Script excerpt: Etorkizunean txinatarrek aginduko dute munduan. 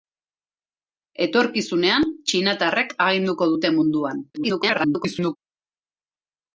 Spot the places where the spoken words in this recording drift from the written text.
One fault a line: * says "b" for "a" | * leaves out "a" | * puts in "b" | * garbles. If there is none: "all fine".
* garbles